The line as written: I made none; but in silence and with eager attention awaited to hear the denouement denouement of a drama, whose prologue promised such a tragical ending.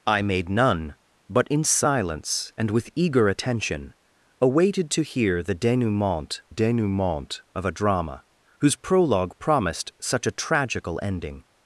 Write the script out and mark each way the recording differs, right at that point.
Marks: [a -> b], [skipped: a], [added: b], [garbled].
I made none; but in silence and with eager attention awaited to hear the denouement denouement of a drama, whose prologue promised such a tragical ending.